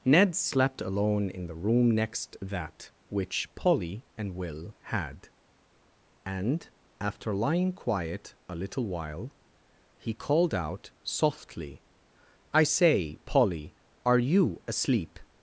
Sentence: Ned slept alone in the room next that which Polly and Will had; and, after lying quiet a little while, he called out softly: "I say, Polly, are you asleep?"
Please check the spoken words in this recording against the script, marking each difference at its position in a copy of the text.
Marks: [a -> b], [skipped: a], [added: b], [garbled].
Ned slept alone in the room next that which Polly and Will had; and, after lying quiet a little while, he called out softly: "I say, Polly, are you asleep?"